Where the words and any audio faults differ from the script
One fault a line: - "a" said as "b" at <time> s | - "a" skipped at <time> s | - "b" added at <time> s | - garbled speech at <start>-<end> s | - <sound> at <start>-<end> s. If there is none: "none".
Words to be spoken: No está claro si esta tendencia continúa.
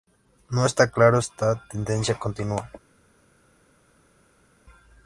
- "si" skipped at 1.2 s